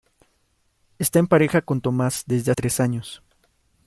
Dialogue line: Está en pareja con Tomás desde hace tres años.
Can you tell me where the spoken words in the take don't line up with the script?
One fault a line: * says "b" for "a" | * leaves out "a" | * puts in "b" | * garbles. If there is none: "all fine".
* leaves out "hace"